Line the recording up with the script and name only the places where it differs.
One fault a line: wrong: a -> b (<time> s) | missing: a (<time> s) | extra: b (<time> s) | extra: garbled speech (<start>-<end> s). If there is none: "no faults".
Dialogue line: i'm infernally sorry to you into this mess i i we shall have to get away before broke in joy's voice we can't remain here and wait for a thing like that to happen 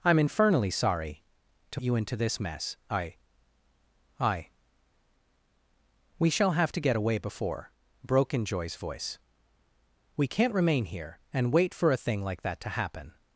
no faults